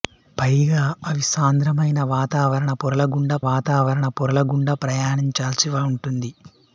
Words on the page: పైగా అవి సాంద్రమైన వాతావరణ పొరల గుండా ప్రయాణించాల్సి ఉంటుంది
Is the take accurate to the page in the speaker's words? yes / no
no